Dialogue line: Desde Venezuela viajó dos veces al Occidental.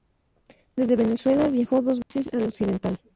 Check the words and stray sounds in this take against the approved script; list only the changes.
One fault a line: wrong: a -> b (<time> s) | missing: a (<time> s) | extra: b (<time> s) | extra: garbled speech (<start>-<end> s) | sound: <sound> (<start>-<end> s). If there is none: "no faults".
sound: dropout (2.0-2.1 s)